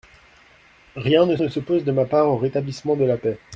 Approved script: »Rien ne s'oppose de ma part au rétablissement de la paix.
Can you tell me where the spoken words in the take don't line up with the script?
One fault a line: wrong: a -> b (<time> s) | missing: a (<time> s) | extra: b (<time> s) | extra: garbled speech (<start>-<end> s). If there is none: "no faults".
extra: ne (1.4 s)